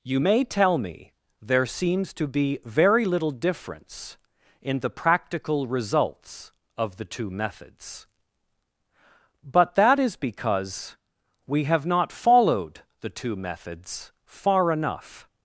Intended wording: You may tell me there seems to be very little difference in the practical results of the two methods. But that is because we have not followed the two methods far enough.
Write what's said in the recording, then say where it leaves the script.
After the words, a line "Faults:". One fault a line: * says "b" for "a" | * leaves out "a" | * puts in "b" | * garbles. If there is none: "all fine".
You may tell me there seems to be very little difference in the practical results of the two methods. But that is because we have not followed the two methods far enough.
Faults:
all fine